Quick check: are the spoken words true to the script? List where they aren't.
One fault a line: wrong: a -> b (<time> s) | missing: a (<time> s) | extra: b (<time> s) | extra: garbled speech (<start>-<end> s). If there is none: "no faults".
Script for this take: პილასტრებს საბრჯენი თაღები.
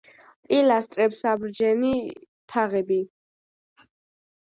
no faults